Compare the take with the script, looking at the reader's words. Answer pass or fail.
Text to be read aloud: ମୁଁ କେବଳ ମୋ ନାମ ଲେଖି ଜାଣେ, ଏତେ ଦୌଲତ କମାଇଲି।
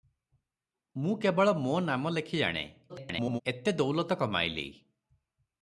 fail